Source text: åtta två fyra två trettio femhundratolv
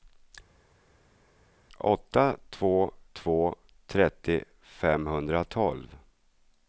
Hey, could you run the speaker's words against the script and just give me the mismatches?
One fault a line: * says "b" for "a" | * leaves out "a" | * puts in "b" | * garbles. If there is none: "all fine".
* leaves out "fyra"